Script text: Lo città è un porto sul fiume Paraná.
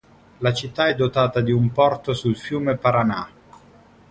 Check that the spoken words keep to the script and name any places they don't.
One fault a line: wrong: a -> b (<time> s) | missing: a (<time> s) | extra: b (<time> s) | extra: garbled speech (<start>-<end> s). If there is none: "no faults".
wrong: Lo -> La (0.4 s)
extra: dotata di (0.9 s)